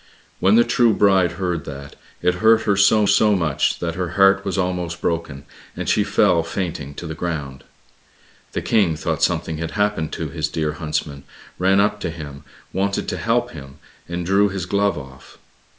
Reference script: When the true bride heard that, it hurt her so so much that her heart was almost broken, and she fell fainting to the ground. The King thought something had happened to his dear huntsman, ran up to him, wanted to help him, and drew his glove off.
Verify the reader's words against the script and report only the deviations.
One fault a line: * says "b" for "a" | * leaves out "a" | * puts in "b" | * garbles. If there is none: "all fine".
all fine